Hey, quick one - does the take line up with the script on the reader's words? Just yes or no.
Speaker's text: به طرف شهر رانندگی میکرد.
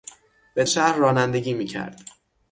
no